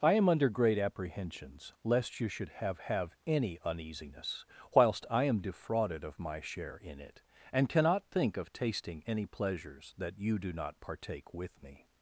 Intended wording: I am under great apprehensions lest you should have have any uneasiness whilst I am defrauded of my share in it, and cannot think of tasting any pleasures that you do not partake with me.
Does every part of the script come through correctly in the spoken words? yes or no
yes